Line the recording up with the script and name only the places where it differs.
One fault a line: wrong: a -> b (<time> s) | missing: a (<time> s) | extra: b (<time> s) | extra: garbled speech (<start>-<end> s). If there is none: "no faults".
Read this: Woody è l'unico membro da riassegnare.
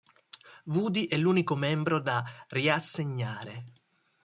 no faults